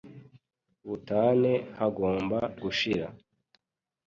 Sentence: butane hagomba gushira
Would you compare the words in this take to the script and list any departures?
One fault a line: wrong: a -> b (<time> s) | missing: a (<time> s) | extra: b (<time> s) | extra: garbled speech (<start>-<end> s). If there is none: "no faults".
no faults